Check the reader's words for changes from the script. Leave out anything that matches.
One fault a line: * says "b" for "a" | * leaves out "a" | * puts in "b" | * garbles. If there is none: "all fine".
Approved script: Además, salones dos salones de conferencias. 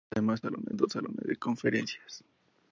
all fine